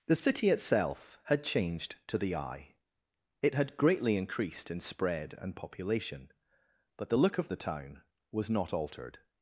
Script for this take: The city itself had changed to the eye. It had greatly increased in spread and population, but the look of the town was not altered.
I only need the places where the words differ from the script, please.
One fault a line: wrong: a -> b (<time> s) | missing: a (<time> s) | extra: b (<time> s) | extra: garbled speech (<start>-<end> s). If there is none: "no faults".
no faults